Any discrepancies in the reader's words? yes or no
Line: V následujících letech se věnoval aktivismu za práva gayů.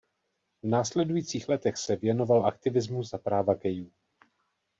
no